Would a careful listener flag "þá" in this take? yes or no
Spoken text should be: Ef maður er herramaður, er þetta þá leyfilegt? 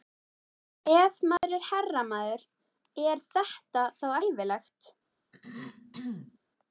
no